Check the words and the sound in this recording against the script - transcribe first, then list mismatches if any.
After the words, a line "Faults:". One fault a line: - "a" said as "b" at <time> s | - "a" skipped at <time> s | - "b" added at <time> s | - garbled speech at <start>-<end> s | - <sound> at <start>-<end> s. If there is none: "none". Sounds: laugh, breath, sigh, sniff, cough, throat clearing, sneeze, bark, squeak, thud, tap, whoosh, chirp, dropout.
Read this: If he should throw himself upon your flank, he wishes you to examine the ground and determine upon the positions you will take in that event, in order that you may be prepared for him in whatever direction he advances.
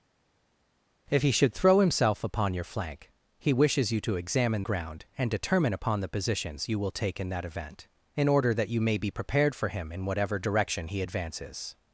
If he should throw himself upon your flank, he wishes you to examine ground and determine upon the positions you will take in that event, in order that you may be prepared for him in whatever direction he advances.
Faults:
- "the" skipped at 4.6 s